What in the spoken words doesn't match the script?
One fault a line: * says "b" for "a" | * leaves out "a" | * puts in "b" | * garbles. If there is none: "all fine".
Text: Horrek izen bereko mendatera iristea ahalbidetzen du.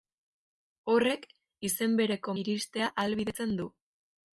* leaves out "mendatera"